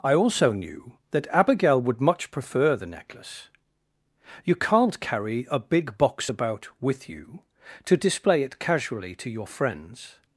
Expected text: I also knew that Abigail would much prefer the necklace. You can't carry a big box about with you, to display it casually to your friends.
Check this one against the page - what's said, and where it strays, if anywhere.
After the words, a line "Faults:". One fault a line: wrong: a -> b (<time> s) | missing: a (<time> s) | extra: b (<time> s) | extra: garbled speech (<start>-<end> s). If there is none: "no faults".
I also knew that Abigail would much prefer the necklace. You can't carry a big box about with you, to display it casually to your friends.
Faults:
no faults